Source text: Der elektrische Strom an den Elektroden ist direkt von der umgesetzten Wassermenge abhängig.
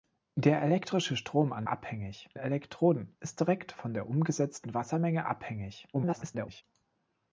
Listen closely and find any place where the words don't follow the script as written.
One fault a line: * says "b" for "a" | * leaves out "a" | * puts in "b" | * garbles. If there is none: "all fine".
* says "abhängig" for "den"
* garbles